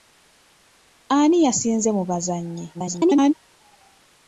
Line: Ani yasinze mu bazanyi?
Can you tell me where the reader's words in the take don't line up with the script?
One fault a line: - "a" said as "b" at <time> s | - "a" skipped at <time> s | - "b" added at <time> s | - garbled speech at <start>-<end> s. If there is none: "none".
- garbled speech at 2.7-3.3 s